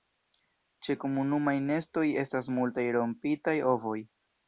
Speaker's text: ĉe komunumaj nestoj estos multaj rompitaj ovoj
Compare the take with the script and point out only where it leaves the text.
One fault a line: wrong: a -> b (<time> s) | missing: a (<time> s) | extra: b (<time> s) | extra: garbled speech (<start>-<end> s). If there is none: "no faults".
wrong: estos -> estas (2.2 s)